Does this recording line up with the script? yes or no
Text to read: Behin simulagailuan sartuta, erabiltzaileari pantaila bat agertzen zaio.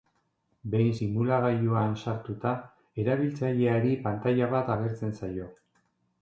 yes